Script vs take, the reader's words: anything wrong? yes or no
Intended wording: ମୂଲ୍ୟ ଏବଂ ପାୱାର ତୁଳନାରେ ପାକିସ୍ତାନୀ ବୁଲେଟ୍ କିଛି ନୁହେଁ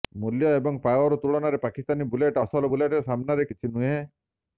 yes